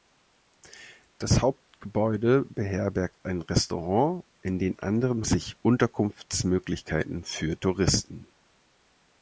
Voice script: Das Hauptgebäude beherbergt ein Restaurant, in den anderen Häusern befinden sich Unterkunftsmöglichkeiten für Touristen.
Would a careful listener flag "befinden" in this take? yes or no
yes